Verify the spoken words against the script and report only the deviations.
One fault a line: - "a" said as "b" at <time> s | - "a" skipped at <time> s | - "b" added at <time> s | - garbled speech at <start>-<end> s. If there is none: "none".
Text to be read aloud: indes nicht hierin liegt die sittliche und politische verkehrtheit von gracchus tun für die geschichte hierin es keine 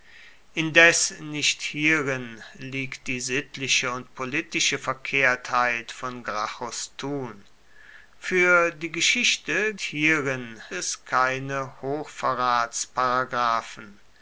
none